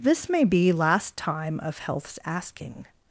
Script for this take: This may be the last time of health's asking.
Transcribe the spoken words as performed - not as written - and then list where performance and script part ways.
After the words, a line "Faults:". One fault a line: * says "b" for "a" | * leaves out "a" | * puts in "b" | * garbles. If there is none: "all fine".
This may be last time of health's asking.
Faults:
* leaves out "the"